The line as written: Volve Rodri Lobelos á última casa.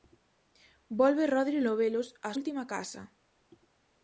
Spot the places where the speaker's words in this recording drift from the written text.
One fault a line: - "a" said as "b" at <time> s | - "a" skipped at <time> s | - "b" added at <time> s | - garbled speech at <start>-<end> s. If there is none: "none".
none